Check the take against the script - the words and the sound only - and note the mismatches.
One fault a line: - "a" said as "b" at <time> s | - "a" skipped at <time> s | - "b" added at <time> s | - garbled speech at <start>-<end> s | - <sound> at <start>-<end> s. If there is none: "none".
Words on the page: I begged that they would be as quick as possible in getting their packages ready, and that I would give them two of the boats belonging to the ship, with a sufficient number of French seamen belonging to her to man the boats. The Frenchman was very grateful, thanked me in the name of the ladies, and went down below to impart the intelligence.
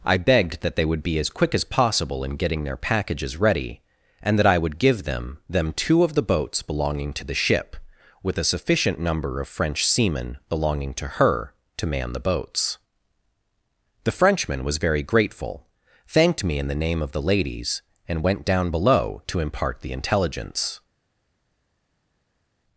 - "them" added at 5.5 s